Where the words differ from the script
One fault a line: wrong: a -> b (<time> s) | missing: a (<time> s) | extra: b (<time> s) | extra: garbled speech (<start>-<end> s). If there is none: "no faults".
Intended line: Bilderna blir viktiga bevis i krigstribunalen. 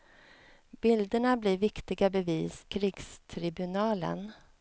missing: i (2.6 s)